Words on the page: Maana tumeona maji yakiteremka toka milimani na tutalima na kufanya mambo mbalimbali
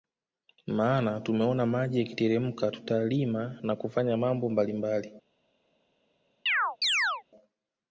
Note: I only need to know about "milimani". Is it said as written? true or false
false